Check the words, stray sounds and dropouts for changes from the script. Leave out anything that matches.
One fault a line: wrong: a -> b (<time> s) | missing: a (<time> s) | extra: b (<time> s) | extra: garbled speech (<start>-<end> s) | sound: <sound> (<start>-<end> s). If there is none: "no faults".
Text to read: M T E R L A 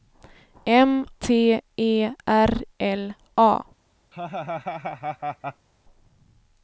sound: laugh (4.1-5.7 s)